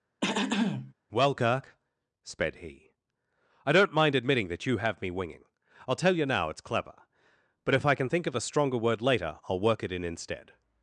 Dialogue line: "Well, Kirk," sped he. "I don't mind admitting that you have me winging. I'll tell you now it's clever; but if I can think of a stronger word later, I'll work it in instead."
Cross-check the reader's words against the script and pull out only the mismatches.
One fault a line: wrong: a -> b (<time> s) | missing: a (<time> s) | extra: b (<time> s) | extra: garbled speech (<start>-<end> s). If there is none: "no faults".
no faults